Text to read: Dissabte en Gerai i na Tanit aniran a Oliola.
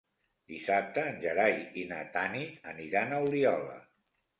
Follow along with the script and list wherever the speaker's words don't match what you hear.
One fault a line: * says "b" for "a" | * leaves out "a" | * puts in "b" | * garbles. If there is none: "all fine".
all fine